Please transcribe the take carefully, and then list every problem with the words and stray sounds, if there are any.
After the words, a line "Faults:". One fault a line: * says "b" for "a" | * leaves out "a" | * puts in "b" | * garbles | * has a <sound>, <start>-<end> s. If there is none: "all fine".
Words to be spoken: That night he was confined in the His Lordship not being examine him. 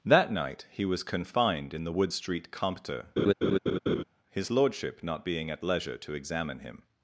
That night he was confined in the Wood Street Compter, his Lordship not being at leisure to examine him.
Faults:
* puts in "Wood Street Compter"
* has a laugh, 3.2-4.0 s
* puts in "at leisure to"